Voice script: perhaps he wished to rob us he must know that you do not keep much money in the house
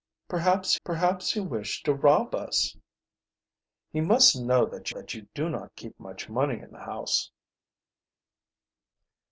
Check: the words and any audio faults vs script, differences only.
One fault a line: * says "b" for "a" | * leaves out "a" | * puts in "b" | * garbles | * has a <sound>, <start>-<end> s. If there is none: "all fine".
* puts in "perhaps"
* puts in "that"